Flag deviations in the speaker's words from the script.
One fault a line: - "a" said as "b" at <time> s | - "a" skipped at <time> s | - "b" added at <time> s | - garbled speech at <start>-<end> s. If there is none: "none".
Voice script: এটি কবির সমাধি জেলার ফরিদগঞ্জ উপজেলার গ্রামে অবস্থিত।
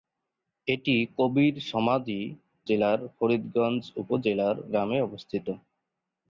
none